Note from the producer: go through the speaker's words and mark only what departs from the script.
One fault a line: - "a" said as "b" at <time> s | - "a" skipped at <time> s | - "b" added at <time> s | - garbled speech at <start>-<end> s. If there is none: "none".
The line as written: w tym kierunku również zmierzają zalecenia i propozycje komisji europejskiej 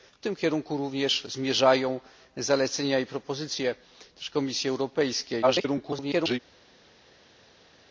- garbled speech at 5.4-6.4 s